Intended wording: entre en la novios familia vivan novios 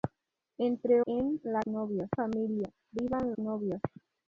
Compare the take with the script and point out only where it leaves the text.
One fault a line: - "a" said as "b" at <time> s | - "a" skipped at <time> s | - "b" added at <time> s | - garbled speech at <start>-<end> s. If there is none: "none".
none